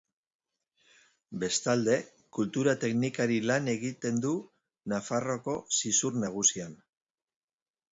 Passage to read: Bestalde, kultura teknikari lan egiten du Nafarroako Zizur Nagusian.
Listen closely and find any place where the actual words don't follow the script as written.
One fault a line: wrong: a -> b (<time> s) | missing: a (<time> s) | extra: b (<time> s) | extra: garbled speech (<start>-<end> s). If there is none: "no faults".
no faults